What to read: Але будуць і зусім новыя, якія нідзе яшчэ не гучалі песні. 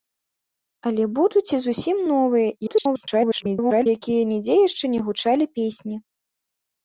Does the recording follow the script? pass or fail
fail